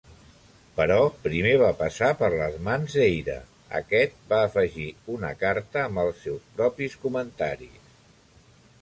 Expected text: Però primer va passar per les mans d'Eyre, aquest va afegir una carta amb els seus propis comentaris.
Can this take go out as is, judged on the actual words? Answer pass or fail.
pass